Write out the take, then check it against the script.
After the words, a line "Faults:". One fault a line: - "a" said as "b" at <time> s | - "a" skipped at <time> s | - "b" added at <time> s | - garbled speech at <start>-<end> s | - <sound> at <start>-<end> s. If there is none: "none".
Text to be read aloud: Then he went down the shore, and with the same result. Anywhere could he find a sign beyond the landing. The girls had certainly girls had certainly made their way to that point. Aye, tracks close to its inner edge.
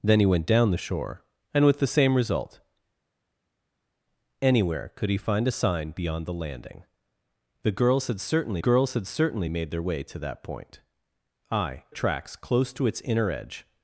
Then he went down the shore, and with the same result. Anywhere could he find a sign beyond the landing. The girls had certainly girls had certainly made their way to that point. Aye, tracks close to its inner edge.
Faults:
none